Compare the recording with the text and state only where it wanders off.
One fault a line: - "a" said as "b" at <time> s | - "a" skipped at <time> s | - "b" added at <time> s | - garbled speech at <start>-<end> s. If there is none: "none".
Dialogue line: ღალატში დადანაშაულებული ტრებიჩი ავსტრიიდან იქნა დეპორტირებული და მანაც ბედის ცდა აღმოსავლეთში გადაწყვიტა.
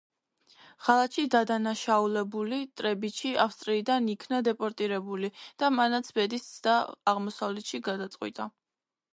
none